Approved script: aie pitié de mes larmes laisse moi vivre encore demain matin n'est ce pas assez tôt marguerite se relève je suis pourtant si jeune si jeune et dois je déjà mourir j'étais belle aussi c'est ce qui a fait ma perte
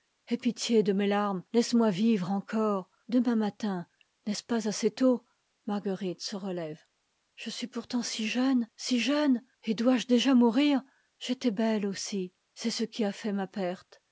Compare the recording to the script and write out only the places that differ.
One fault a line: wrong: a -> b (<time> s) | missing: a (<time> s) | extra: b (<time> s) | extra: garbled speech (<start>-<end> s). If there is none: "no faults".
no faults